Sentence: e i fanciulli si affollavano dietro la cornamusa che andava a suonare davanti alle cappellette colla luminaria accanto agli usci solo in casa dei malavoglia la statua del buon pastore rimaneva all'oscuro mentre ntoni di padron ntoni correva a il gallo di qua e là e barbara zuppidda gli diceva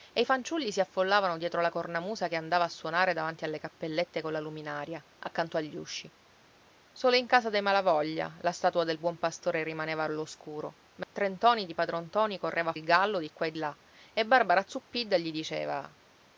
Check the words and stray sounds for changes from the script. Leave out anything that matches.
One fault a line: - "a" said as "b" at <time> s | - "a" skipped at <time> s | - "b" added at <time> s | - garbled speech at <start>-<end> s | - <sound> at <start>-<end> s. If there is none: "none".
- dropout at 11.0-11.2 s